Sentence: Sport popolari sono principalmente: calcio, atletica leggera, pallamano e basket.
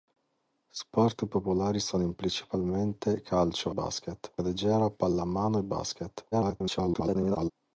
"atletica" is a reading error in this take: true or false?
true